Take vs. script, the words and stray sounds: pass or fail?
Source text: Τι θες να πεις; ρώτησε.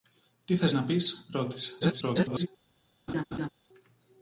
fail